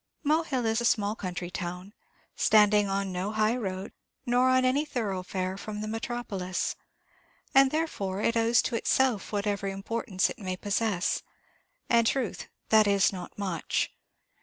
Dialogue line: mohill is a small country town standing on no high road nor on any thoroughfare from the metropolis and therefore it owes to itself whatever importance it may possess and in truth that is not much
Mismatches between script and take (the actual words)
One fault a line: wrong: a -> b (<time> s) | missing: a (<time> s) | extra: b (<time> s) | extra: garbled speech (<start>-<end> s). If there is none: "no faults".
missing: in (12.1 s)